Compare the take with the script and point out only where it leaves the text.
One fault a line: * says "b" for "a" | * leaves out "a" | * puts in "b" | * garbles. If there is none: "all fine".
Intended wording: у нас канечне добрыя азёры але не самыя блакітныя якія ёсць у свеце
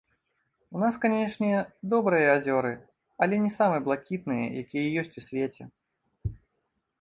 all fine